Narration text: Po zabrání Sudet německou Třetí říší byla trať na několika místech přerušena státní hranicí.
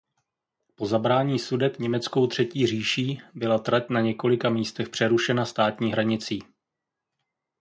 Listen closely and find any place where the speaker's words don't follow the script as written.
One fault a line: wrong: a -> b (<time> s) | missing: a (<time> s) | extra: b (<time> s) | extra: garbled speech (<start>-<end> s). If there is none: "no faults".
no faults